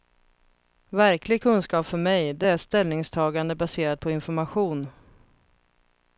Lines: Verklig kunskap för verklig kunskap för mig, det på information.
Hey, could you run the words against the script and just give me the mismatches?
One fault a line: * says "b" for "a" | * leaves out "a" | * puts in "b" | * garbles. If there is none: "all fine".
* says "mig det är ställningstagande baserat" for "verklig kunskap för mig det"